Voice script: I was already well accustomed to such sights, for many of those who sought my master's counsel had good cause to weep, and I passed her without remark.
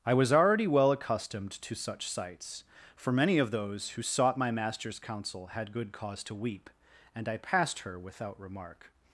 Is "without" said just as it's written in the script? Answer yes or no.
yes